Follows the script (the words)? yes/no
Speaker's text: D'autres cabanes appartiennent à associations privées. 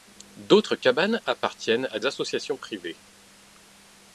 yes